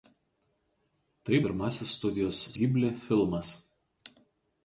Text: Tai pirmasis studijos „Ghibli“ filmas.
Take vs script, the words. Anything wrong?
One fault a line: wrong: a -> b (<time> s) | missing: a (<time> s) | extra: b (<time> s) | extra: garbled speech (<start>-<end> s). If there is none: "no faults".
no faults